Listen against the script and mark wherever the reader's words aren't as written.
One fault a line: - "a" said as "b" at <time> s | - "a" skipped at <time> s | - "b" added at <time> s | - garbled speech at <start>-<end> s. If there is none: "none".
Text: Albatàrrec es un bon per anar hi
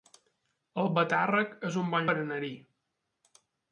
none